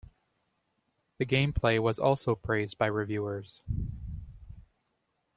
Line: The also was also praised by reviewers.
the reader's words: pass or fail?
fail